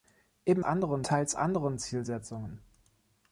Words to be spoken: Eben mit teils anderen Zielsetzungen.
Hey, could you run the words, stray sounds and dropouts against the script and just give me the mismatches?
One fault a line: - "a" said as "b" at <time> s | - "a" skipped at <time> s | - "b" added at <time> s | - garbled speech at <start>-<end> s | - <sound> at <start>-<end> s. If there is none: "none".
- "mit" said as "anderen" at 0.6 s